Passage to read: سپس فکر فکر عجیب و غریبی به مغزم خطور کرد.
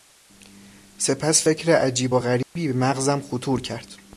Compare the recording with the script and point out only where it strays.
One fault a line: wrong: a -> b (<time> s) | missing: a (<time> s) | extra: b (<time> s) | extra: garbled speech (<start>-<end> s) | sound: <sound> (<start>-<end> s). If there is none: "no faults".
missing: فکر (1.8 s)
sound: dropout (2.4-2.6 s)